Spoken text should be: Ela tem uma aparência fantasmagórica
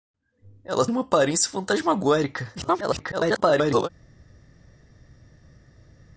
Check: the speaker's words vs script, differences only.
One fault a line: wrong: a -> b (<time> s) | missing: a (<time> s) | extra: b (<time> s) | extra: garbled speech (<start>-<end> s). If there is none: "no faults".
missing: tem (0.8 s)
extra: garbled speech (2.6-3.9 s)